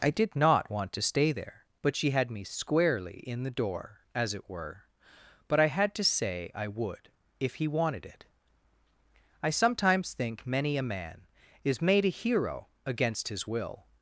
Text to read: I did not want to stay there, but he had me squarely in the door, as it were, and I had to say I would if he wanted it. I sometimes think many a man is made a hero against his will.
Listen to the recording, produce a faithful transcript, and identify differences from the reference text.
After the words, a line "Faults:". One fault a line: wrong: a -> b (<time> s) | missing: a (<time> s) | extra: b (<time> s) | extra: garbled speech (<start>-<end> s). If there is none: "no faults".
I did not want to stay there, but she had me squarely in the door, as it were, but I had to say I would if he wanted it. I sometimes think many a man is made a hero against his will.
Faults:
wrong: he -> she (1.9 s)
wrong: and -> but (5.5 s)